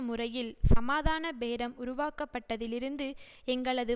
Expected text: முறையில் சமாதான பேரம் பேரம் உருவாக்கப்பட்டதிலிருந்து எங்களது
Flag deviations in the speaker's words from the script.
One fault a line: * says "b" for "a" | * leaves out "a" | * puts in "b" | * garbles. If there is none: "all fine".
* leaves out "பேரம்"